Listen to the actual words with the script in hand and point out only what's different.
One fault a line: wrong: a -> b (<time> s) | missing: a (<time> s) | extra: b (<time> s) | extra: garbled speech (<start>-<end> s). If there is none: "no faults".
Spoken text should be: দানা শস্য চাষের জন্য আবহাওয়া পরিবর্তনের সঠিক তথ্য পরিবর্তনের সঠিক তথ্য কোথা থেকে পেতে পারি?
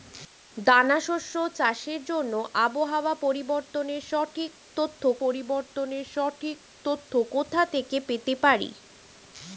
no faults